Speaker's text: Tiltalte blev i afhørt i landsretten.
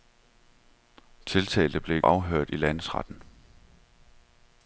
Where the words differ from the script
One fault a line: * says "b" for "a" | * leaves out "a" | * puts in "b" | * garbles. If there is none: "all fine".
all fine